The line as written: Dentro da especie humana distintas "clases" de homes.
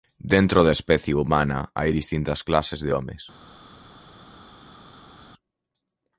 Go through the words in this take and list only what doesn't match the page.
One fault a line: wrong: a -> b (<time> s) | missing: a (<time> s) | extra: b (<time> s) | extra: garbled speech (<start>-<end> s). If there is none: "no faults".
extra: hai (1.8 s)